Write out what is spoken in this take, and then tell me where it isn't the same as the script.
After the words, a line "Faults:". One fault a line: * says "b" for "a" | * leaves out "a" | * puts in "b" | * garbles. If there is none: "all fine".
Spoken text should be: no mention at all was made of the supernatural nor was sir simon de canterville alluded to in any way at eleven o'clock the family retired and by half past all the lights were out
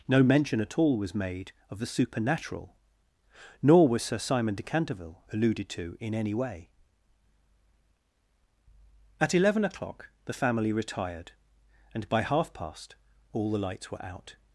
no mention at all was made of the supernatural nor was sir simon de canterville alluded to in any way at eleven o'clock the family retired and by half past all the lights were out
Faults:
all fine